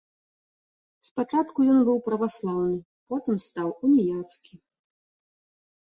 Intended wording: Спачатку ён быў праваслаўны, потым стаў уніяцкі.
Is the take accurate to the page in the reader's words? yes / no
yes